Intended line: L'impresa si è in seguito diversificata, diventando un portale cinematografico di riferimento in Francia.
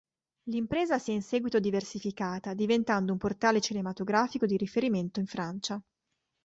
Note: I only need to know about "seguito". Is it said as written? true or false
true